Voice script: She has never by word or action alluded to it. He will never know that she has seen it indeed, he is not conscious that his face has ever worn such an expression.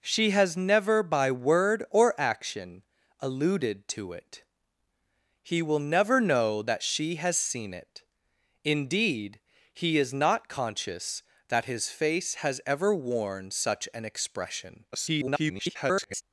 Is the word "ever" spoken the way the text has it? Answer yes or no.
yes